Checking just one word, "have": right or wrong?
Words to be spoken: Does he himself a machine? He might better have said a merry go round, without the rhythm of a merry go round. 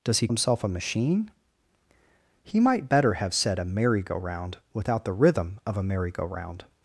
right